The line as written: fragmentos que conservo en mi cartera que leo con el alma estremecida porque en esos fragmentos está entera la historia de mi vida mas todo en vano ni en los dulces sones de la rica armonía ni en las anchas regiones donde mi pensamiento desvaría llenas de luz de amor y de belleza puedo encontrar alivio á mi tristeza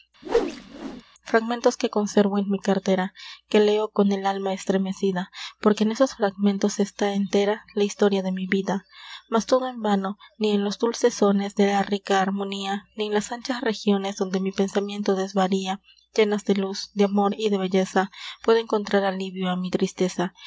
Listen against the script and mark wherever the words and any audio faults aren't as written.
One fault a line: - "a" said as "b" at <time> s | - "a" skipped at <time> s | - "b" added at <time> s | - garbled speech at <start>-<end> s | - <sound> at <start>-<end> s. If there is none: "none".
- whoosh at 0.2-1.0 s